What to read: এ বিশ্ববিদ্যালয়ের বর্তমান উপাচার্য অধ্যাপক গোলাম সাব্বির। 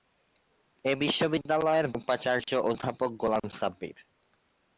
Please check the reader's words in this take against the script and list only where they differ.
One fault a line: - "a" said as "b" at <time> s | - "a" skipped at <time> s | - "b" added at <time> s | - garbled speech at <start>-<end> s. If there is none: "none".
- "বর্তমান" skipped at 1.9 s